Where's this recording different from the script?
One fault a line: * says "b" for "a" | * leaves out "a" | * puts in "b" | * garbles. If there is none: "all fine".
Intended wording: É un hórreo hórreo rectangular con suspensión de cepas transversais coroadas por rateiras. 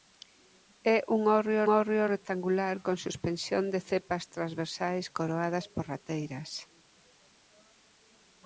all fine